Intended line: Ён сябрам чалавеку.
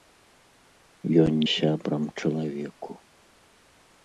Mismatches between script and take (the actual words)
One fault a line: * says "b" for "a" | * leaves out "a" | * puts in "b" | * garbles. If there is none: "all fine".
all fine